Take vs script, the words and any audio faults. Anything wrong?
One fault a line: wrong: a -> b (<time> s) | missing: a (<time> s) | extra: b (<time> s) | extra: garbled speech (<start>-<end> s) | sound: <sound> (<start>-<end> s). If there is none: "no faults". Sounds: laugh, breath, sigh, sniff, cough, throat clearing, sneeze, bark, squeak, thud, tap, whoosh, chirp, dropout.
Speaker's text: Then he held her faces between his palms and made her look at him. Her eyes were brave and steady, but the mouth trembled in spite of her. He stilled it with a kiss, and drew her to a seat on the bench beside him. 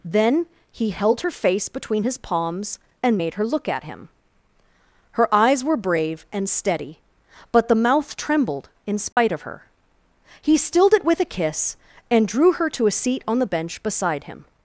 wrong: faces -> face (1.3 s)
sound: dropout (9.1-9.2 s)